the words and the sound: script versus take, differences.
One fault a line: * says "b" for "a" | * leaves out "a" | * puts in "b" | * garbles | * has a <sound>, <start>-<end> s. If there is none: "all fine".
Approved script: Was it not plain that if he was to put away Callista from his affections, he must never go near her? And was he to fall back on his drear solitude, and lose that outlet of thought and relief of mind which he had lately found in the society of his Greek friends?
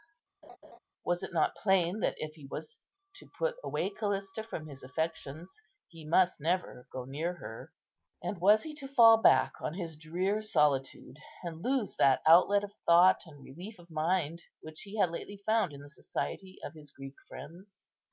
* has a laugh, 0.4-0.8 s